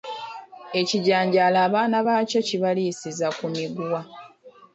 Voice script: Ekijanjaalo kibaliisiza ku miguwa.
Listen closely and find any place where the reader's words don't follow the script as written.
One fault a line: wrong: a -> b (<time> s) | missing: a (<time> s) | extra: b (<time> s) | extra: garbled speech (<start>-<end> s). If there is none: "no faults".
extra: abaana baakyo (1.7 s)